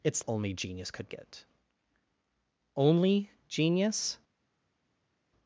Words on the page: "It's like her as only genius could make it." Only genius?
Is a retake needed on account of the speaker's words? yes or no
yes